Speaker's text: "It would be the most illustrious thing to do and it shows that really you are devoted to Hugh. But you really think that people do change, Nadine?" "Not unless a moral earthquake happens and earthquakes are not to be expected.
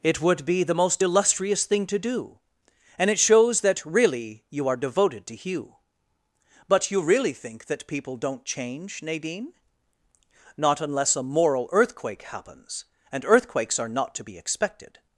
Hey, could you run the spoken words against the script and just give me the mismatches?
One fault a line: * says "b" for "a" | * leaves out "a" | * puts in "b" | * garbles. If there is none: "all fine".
* says "don't" for "do"